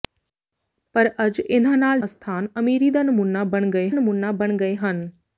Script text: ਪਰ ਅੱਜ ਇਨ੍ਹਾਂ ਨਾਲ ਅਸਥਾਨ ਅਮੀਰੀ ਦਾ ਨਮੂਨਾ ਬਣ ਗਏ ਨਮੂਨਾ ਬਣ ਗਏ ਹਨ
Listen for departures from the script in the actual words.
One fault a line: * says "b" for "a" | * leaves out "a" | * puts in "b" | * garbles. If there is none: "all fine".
all fine